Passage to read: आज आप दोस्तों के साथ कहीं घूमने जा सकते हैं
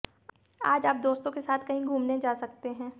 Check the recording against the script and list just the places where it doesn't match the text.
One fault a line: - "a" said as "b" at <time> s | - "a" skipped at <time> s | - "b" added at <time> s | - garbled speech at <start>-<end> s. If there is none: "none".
none